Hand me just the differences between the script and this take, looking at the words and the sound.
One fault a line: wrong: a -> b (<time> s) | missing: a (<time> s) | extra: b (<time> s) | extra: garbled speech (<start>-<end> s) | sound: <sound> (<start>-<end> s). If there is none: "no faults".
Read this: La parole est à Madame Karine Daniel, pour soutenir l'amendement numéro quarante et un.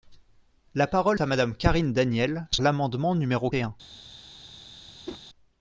missing: est (1.2 s)
missing: pour soutenir (2.5 s)
missing: quarante (3.5 s)
sound: whoosh (5.1-5.2 s)